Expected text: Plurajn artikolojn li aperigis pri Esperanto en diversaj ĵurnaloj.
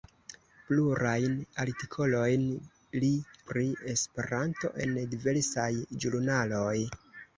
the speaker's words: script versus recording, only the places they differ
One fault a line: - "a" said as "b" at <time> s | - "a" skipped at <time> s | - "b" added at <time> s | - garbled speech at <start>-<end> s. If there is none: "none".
- "aperigis" skipped at 3.1 s